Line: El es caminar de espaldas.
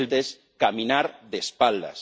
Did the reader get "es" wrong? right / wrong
right